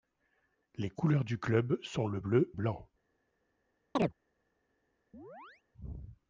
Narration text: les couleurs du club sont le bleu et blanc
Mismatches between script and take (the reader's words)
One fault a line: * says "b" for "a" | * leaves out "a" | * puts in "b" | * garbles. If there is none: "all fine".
* leaves out "et"